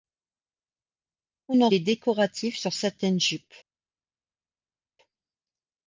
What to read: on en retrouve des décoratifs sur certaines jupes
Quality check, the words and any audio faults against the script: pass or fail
fail